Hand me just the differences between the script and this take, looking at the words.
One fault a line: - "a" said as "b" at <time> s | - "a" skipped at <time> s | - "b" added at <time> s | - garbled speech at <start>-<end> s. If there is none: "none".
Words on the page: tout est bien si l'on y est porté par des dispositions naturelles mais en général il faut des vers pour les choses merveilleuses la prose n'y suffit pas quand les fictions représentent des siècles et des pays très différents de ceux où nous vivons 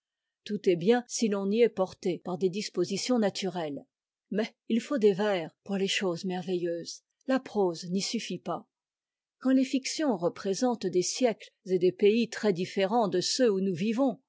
- "en général" skipped at 4.5 s